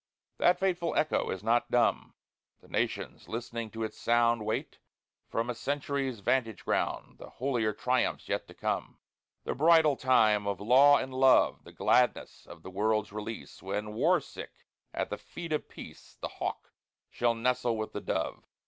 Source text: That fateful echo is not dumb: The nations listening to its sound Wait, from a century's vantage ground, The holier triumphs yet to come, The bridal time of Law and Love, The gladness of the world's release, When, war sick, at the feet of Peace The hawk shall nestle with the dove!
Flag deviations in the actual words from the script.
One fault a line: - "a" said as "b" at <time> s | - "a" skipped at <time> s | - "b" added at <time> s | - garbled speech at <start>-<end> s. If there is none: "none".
none